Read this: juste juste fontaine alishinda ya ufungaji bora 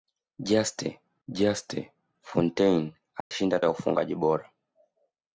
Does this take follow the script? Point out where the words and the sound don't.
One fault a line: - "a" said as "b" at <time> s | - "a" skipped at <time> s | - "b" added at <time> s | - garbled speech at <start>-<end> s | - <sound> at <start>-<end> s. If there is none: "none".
- dropout at 3.2-3.3 s